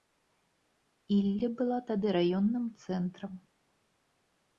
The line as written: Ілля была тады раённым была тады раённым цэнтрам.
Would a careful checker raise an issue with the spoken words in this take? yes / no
yes